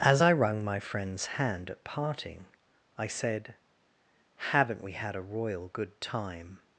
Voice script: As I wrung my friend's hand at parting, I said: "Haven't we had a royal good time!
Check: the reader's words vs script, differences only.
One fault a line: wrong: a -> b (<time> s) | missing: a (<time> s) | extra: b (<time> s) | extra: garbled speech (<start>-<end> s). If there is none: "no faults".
no faults